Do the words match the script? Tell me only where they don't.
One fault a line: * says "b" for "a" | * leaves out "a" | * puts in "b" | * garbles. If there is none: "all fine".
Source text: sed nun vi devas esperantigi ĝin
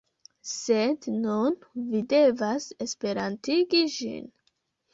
all fine